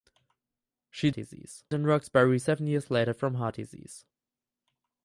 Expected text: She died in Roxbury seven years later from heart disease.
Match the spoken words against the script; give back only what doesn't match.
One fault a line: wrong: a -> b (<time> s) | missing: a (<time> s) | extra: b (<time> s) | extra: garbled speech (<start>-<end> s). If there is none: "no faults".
wrong: died -> disease (1.1 s)